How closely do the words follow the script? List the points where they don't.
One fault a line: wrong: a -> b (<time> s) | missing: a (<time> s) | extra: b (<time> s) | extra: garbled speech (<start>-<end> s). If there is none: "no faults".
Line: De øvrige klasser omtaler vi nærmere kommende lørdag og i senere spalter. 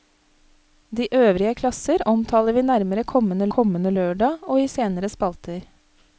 extra: kommende (3.6 s)